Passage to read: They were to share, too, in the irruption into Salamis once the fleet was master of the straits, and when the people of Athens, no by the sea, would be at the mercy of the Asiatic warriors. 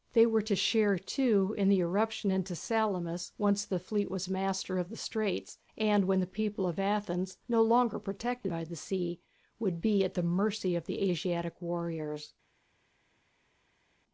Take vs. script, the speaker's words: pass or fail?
fail